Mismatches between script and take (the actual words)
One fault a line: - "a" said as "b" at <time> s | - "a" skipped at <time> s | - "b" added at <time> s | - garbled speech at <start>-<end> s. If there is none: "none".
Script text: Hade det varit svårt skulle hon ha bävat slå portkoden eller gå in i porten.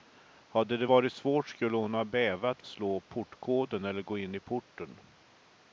none